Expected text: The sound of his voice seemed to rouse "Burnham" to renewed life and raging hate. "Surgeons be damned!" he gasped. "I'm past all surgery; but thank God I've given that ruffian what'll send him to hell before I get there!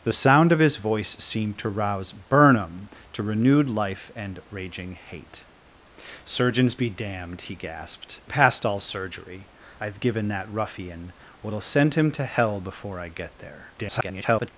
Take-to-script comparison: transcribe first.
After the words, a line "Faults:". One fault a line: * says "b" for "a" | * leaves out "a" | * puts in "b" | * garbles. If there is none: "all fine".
The sound of his voice seemed to rouse "Burnham" to renewed life and raging hate. "Surgeons be damned!" he gasped. "Past all surgery; I've given that ruffian what'll send him to hell before I get there! [garbled]
Faults:
* leaves out "I'm"
* leaves out "but thank God"
* garbles